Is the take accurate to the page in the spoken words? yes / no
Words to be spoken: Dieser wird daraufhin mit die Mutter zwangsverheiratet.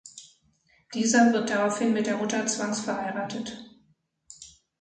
no